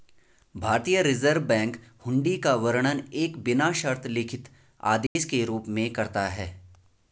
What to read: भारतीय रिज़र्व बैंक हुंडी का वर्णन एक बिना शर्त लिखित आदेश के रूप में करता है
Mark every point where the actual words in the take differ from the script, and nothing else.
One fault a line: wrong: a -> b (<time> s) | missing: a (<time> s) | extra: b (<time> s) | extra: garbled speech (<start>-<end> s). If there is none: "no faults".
no faults